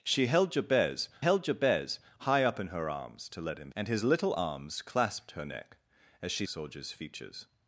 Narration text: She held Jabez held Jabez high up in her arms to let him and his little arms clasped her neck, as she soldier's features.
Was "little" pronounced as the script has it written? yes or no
yes